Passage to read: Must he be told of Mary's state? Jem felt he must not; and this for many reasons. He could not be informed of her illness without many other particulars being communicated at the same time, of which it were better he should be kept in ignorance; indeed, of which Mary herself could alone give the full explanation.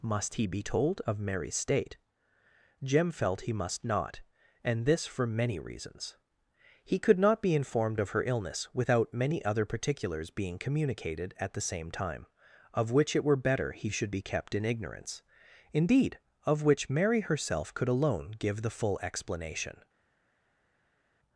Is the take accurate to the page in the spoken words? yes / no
yes